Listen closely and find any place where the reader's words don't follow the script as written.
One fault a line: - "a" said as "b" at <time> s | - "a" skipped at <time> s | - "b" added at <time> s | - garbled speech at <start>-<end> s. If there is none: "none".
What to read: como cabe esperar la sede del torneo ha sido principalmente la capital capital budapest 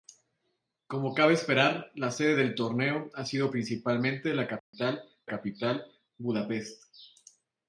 none